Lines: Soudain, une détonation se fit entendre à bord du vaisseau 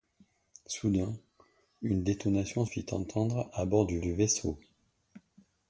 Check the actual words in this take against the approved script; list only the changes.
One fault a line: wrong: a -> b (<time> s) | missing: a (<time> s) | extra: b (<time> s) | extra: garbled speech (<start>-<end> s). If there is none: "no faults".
missing: se (2.6 s)
extra: du (4.0 s)